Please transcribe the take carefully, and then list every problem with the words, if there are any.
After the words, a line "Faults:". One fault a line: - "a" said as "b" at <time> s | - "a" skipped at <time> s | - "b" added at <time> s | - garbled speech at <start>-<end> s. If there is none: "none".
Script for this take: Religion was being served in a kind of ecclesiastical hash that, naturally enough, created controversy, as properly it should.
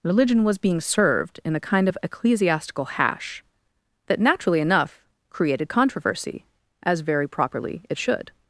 Religion was being served in a kind of ecclesiastical hash that, naturally enough, created controversy, as very properly it should.
Faults:
- "very" added at 7.0 s